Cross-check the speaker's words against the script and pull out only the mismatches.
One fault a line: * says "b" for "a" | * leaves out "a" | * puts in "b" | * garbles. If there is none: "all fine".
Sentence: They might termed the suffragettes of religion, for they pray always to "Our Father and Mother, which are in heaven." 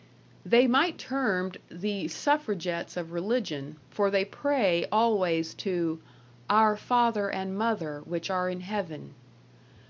all fine